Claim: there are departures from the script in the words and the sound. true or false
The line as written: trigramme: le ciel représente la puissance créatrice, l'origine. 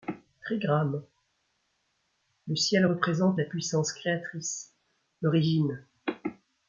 false